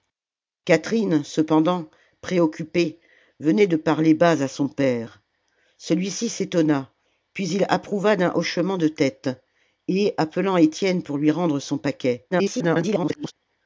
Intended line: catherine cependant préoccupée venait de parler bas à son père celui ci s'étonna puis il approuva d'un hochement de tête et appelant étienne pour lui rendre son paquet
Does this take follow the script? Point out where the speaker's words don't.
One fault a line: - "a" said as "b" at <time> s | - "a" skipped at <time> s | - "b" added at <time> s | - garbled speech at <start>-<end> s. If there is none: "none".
- garbled speech at 12.3-13.3 s